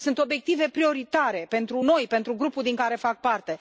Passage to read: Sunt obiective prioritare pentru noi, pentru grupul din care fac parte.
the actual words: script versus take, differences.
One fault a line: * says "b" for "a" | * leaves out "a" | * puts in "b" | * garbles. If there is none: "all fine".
all fine